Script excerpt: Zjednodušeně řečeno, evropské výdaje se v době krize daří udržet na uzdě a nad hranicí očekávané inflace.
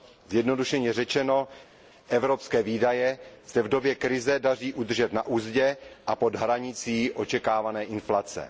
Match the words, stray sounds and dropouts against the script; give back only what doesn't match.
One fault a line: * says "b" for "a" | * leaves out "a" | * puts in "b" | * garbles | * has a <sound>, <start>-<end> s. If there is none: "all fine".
* says "pod" for "nad"